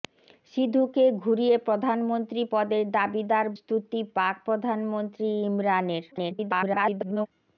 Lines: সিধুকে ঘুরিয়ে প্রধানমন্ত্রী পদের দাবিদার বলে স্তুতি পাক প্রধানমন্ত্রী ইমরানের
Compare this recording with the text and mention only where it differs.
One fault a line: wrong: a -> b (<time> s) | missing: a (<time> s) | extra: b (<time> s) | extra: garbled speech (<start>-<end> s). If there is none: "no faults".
missing: বলে (3.5 s)
extra: garbled speech (6.1-7.3 s)